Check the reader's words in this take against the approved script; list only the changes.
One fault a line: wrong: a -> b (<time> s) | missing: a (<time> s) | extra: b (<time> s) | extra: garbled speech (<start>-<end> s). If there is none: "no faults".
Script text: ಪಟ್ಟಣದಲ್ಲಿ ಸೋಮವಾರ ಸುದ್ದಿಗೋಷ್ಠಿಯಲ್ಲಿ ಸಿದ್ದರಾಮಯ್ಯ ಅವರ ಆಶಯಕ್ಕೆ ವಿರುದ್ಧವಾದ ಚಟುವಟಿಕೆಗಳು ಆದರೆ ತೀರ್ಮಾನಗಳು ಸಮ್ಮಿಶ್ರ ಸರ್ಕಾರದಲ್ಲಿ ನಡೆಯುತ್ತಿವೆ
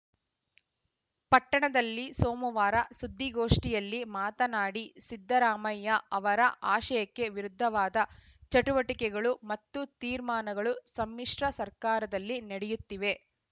extra: ಮಾತನಾಡಿ (4.2 s)
wrong: ಆದರೆ -> ಮತ್ತು (9.5 s)